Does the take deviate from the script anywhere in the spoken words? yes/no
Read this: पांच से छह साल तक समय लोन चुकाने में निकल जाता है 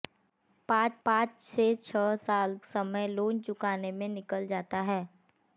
yes